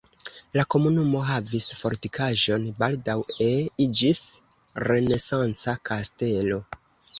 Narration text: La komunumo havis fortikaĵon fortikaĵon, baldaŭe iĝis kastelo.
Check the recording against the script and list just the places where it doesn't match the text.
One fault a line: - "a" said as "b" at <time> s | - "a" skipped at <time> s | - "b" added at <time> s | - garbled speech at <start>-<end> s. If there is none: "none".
- "fortikaĵon" skipped at 2.6 s
- "renesanca" added at 4.9 s